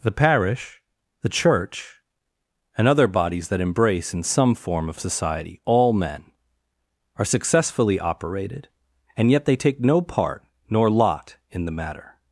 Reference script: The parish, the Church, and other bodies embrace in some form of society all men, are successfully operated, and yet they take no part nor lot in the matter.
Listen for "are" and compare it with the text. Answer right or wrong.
right